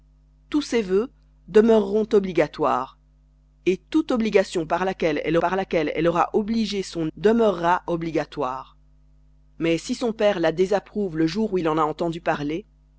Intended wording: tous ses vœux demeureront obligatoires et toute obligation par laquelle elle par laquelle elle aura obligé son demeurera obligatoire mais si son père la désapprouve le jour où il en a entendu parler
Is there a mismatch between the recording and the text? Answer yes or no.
no